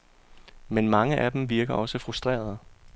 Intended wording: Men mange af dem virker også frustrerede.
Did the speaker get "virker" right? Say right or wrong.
right